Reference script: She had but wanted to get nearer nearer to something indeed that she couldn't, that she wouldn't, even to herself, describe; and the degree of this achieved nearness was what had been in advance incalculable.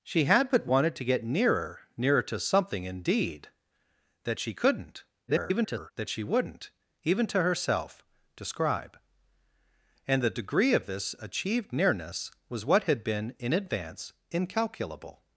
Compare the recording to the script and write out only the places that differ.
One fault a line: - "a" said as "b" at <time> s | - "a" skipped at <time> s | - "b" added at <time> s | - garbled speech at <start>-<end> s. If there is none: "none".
- garbled speech at 5.3-5.9 s